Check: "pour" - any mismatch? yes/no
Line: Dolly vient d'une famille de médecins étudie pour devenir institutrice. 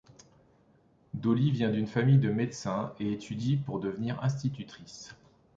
no